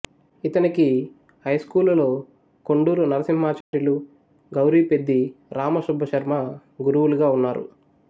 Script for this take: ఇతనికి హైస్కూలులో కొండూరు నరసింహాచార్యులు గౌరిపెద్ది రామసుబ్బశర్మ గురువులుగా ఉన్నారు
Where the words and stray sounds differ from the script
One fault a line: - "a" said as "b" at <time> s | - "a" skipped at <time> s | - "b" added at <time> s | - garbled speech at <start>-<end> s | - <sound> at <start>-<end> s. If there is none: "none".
- dropout at 3.6-3.7 s